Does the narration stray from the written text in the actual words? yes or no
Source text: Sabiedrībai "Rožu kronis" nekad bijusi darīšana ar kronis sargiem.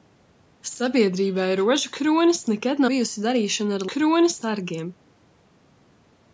no